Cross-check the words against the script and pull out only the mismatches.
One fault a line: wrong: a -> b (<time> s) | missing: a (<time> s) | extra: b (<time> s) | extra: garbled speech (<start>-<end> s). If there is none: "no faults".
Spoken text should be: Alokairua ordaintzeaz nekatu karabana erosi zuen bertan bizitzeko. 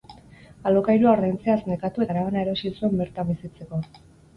no faults